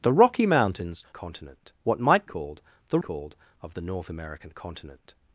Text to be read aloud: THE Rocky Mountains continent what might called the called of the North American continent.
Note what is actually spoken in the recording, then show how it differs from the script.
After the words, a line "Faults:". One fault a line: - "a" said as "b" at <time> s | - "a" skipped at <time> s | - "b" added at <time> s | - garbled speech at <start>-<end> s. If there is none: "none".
THE Rocky Mountains continent what might called the called of the North American continent.
Faults:
none